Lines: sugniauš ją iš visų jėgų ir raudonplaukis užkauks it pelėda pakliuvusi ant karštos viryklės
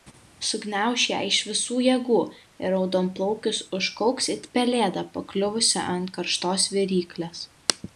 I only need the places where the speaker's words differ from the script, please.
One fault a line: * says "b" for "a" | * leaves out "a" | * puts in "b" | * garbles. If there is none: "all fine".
all fine